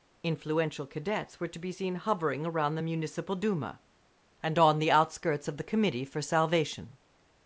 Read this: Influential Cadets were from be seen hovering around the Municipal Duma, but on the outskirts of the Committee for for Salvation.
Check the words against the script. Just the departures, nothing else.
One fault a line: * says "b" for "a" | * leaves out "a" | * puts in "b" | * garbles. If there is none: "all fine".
* says "to" for "from"
* says "and" for "but"
* leaves out "for"